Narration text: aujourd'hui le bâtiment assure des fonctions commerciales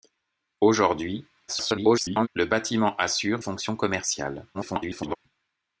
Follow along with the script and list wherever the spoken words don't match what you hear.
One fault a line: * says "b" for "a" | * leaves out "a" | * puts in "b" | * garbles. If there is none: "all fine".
* garbles
* leaves out "des"
* garbles